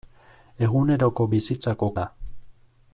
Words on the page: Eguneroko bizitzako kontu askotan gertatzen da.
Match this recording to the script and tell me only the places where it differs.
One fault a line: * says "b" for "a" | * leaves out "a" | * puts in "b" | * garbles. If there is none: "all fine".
* leaves out "kontu askotan gertatzen"